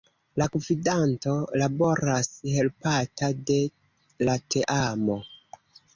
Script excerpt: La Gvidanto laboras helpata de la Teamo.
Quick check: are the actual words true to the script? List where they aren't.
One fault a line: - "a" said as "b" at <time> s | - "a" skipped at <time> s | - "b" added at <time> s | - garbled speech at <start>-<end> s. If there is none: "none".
none